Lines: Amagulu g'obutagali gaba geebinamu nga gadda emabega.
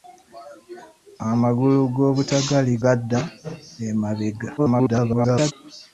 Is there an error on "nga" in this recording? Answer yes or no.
yes